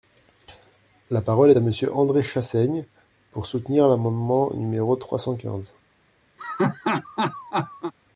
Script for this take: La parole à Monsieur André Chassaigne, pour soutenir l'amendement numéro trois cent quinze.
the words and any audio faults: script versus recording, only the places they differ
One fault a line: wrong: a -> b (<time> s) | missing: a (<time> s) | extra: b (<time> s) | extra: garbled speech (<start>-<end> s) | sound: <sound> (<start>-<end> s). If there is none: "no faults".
sound: laugh (6.4-7.9 s)